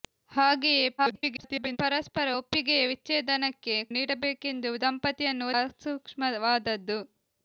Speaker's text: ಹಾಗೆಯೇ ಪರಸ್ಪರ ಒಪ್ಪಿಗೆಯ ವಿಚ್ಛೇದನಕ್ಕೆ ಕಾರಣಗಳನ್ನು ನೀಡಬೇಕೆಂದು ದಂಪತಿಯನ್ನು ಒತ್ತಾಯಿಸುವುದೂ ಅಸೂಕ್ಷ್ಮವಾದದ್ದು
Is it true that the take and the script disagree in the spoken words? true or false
true